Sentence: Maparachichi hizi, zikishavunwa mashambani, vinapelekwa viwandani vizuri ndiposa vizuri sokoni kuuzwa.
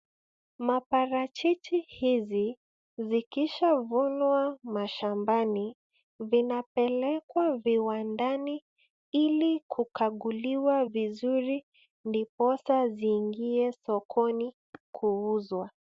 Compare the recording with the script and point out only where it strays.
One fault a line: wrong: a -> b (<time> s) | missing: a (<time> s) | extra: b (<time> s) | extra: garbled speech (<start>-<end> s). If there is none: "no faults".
extra: ili kukaguliwa (9.1 s)
wrong: vizuri -> ziingie (12.9 s)